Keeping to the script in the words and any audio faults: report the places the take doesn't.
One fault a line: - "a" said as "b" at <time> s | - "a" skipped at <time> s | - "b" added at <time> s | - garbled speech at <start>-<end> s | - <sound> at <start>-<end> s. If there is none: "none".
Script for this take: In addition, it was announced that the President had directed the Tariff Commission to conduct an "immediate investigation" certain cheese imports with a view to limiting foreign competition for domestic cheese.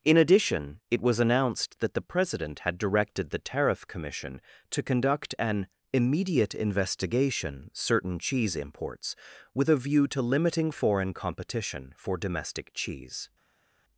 none